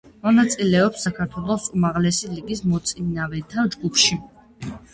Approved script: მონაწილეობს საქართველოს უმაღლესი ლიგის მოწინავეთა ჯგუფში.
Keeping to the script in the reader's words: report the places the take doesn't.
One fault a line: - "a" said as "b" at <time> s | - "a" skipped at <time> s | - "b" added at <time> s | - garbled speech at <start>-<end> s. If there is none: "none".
none